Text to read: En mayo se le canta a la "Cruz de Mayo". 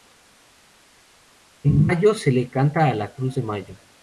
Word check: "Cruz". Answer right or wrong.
right